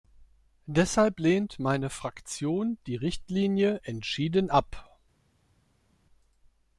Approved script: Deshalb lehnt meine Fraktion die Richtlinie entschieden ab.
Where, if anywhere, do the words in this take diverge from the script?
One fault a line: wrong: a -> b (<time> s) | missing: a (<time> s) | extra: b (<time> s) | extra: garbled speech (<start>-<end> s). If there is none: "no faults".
no faults